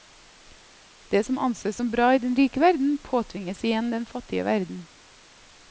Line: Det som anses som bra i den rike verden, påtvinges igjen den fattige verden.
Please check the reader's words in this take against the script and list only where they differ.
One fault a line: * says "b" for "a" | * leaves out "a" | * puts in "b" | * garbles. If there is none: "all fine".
all fine